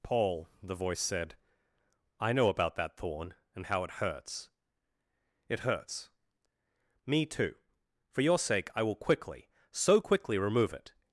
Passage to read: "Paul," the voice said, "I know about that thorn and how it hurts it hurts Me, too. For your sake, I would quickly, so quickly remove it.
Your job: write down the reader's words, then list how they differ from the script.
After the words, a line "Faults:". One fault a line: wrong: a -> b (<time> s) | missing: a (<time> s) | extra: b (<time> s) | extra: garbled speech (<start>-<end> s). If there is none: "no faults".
"Paul," the voice said, "I know about that thorn and how it hurts it hurts Me, too. For your sake, I will quickly, so quickly remove it.
Faults:
wrong: would -> will (8.8 s)